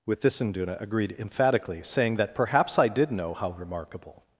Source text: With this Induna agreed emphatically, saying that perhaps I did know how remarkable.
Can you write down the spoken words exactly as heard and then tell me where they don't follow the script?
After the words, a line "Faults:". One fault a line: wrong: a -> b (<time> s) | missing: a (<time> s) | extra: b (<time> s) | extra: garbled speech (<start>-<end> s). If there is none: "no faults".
With this Induna agreed emphatically, saying that perhaps I did know how remarkable.
Faults:
no faults